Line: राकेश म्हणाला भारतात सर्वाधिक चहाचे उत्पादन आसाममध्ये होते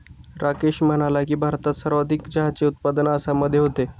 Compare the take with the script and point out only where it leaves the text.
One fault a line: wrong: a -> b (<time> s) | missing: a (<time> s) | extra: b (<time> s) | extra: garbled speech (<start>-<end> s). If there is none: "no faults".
extra: की (1.2 s)